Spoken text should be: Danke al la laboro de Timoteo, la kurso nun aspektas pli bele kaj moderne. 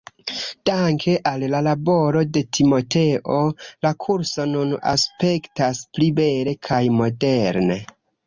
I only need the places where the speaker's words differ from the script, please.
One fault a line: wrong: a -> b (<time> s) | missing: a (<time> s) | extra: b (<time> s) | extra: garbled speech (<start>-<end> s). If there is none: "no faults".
no faults